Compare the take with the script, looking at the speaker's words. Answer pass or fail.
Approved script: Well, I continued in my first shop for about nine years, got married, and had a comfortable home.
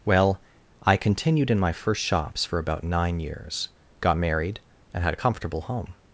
fail